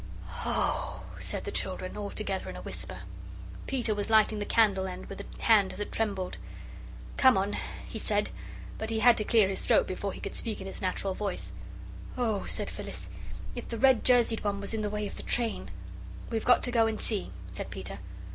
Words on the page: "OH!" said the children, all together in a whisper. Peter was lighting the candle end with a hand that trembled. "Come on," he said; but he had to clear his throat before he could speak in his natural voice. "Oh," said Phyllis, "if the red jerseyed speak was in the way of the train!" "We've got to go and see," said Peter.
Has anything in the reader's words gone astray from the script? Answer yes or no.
yes